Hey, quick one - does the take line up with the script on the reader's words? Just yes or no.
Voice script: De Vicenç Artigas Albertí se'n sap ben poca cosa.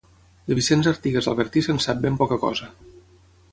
yes